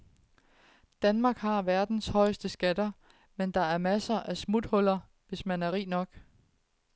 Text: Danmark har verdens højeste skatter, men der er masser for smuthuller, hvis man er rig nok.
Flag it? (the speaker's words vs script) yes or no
yes